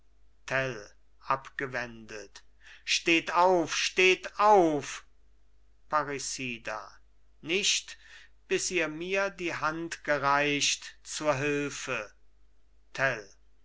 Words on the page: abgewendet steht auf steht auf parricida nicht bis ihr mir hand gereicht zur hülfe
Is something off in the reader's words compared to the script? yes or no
yes